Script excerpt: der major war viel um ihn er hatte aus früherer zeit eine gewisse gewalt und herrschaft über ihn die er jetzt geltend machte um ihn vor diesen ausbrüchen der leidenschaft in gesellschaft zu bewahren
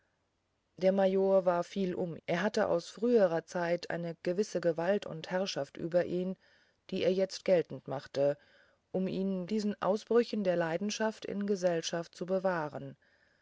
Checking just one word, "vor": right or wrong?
wrong